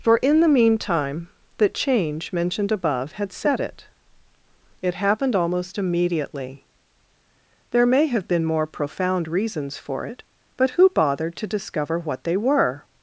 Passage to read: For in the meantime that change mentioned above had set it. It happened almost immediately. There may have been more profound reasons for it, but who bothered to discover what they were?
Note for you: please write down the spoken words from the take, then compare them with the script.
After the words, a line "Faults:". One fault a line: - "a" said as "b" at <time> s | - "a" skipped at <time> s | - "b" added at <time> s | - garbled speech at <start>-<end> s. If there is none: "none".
For in the meantime the change mentioned above had set it. It happened almost immediately. There may have been more profound reasons for it, but who bothered to discover what they were?
Faults:
- "that" said as "the" at 1.6 s